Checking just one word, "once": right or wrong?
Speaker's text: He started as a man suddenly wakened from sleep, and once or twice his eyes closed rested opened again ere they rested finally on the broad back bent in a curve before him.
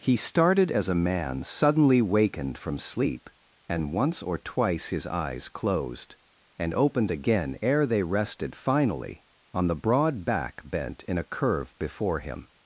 right